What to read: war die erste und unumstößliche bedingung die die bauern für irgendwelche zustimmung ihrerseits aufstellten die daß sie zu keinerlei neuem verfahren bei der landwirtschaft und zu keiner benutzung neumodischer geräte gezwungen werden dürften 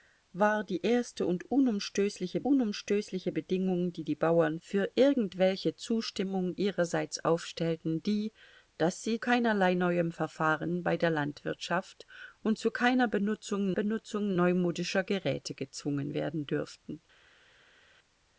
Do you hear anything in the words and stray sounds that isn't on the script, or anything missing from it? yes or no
yes